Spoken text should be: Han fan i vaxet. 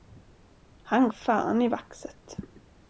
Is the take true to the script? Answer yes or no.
yes